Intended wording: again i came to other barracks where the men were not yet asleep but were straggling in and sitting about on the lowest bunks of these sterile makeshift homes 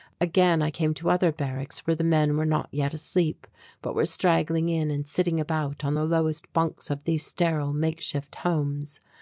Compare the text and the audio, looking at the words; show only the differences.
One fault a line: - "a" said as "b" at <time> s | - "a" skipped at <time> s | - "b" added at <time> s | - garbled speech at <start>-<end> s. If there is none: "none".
none